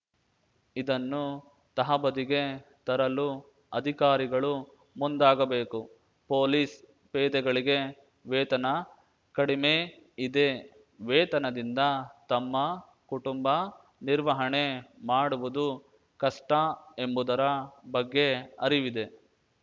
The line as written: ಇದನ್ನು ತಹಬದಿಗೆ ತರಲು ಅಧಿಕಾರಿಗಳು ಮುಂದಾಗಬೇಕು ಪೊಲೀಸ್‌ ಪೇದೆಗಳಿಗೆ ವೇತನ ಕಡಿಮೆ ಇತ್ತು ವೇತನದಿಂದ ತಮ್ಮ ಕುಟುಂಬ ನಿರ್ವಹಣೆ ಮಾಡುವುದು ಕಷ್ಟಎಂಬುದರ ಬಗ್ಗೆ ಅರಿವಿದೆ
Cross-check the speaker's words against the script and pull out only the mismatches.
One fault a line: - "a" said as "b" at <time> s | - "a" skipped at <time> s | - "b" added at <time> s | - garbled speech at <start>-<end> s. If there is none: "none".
- "ಇತ್ತು" said as "ಇದೆ" at 10.2 s